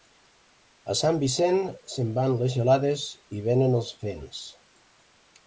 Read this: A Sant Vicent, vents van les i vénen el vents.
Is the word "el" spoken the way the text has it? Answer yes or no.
no